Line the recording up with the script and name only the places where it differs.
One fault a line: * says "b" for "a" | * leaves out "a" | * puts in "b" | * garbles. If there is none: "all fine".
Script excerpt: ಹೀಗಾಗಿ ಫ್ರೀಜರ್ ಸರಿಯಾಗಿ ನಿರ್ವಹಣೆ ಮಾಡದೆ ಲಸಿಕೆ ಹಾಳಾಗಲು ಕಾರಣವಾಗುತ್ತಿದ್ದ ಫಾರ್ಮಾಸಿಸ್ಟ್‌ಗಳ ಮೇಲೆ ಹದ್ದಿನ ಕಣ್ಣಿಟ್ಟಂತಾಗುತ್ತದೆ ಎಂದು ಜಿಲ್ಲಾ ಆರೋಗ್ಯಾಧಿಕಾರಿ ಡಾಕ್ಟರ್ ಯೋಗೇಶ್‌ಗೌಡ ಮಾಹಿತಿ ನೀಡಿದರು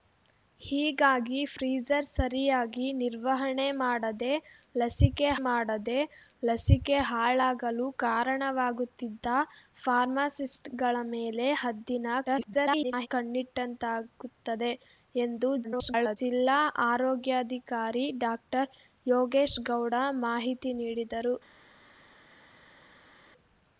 * puts in "ಮಾಡದೆ ಲಸಿಕೆ"
* garbles
* garbles